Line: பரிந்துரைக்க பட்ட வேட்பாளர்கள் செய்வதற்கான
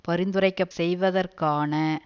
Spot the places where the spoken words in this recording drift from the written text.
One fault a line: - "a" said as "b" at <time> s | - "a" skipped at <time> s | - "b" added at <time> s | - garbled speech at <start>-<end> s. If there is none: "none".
- "பட்ட வேட்பாளர்கள்" skipped at 0.7 s